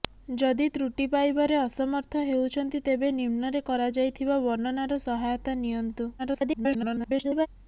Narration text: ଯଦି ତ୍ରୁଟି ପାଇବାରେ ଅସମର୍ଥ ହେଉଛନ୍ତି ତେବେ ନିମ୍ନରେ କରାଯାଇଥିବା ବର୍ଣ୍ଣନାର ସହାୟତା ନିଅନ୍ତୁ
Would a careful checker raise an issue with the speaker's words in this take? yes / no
yes